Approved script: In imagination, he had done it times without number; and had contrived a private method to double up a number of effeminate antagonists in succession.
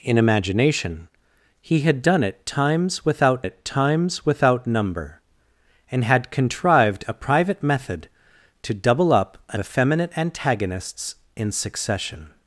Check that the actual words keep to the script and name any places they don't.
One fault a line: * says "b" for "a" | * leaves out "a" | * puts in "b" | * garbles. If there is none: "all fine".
* puts in "it times without"
* leaves out "number of"